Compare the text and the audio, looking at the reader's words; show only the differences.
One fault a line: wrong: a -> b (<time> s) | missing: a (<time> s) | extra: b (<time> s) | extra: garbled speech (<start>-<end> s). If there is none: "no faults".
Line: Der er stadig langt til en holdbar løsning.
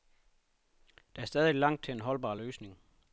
no faults